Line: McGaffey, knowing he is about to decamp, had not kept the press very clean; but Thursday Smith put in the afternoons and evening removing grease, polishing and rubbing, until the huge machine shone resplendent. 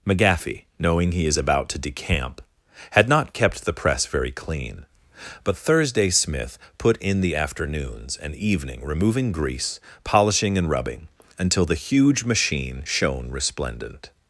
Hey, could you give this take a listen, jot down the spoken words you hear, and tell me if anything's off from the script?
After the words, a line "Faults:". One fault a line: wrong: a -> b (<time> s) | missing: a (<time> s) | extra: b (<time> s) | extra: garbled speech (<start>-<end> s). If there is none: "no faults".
McGaffey, knowing he is about to decamp, had not kept the press very clean; but Thursday Smith put in the afternoons and evening removing grease, polishing and rubbing, until the huge machine shone resplendent.
Faults:
no faults